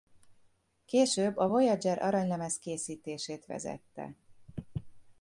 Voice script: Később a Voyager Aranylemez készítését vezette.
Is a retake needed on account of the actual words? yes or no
no